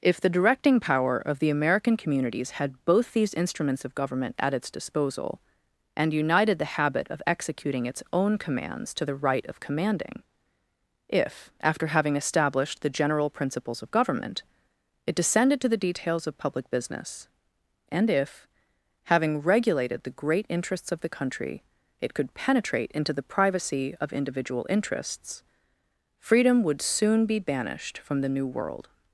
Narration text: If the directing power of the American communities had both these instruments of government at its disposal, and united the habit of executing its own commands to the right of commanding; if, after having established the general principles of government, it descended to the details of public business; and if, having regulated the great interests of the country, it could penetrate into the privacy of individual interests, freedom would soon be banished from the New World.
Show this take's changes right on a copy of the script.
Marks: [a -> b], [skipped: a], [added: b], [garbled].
If the directing power of the American communities had both these instruments of government at its disposal, and united the habit of executing its own commands to the right of commanding; if, after having established the general principles of government, it descended to the details of public business; and if, having regulated the great interests of the country, it could penetrate into the privacy of individual interests, freedom would soon be banished from the New World.